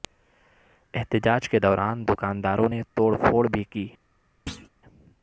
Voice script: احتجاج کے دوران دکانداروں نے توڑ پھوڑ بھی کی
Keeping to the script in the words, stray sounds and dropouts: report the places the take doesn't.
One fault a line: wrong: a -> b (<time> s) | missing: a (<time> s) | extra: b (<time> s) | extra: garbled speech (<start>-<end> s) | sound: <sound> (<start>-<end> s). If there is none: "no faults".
sound: thud (4.5-4.7 s)